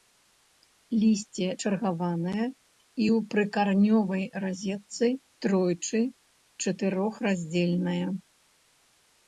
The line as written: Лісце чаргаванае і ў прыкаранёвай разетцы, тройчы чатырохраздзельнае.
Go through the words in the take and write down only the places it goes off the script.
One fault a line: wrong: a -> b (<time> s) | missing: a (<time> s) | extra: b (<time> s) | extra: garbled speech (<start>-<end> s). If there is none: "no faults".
no faults